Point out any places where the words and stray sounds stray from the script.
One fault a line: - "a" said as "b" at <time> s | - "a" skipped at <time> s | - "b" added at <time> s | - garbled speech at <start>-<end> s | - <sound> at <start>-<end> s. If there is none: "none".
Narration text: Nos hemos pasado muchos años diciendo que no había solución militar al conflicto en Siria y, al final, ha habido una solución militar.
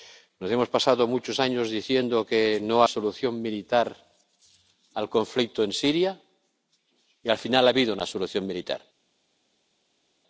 - "había" skipped at 2.8 s